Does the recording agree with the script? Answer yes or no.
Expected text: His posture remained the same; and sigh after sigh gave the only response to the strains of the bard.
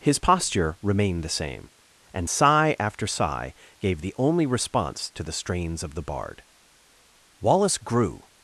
no